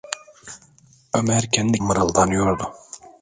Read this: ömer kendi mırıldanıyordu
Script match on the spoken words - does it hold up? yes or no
yes